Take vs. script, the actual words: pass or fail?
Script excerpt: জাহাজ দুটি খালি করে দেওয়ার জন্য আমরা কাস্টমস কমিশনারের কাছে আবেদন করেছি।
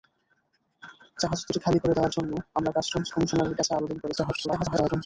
fail